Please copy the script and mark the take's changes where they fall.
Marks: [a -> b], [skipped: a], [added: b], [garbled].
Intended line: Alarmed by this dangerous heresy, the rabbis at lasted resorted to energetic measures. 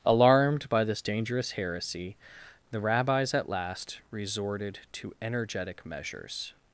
Alarmed by this dangerous heresy, the rabbis at [lasted -> last] resorted to energetic measures.